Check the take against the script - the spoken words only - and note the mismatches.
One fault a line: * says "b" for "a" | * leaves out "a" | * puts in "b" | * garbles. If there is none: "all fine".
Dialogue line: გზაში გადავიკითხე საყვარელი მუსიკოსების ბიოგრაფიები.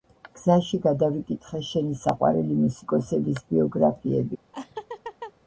* puts in "შენი"